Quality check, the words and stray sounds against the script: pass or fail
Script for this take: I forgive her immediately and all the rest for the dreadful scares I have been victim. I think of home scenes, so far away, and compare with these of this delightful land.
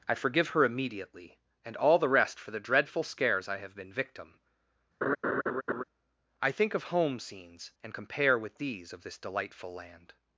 fail